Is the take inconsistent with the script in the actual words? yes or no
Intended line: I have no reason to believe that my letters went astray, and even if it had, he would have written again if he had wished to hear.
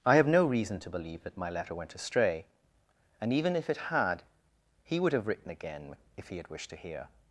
yes